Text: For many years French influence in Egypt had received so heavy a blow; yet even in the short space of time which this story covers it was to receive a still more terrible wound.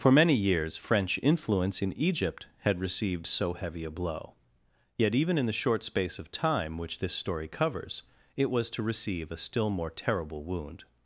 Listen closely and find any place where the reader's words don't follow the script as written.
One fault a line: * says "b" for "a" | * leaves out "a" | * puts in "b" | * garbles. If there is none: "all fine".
all fine